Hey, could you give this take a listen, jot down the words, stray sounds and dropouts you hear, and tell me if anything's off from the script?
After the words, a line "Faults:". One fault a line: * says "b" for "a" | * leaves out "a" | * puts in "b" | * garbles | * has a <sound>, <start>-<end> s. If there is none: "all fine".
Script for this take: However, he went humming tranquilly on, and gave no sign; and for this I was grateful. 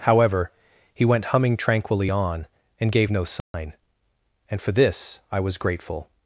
However, he went humming tranquilly on, and gave no sign; and for this I was grateful.
Faults:
* has a dropout, 3.4-3.5 s